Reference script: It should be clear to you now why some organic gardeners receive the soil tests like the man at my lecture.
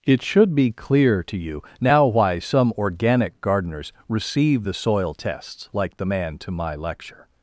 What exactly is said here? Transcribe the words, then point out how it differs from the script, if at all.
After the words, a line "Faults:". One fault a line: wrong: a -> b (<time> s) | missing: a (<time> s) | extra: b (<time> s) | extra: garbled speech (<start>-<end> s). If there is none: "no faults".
It should be clear to you now why some organic gardeners receive the soil tests like the man to my lecture.
Faults:
wrong: at -> to (6.4 s)